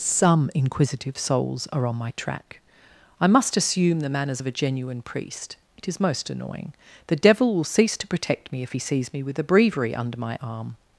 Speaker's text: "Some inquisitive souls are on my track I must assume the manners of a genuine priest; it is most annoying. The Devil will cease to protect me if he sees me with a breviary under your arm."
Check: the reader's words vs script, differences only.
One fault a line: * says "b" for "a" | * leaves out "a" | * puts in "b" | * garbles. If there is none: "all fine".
* says "my" for "your"